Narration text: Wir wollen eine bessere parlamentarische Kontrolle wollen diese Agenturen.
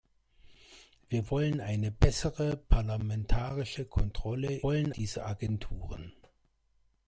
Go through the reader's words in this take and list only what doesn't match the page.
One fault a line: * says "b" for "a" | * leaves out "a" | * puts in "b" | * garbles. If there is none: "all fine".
all fine